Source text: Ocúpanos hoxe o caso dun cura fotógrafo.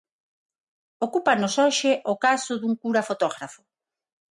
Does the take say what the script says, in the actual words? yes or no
yes